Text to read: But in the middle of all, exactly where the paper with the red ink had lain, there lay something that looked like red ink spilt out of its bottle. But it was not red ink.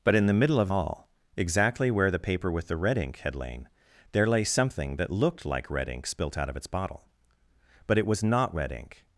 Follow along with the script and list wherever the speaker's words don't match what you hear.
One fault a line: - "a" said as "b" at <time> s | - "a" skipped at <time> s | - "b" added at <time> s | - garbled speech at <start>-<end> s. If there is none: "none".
none